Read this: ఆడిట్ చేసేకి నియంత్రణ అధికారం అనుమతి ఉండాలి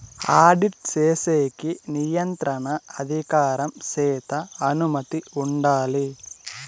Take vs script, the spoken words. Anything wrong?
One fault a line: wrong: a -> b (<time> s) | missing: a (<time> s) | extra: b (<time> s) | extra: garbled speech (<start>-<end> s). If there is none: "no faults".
extra: చేత (3.9 s)